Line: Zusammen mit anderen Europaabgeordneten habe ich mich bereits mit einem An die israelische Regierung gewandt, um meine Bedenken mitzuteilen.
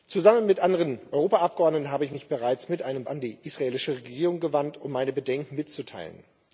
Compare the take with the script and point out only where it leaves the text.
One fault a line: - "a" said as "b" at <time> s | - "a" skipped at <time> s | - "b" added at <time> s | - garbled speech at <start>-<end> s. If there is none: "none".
none